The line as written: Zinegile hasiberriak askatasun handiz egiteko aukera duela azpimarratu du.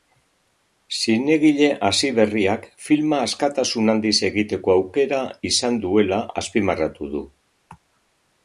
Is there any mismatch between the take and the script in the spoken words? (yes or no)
yes